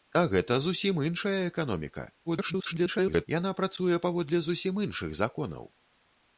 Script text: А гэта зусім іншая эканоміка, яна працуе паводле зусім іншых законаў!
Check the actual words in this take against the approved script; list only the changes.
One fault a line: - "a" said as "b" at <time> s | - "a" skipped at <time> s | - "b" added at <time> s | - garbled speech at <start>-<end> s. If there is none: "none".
- garbled speech at 2.3-3.3 s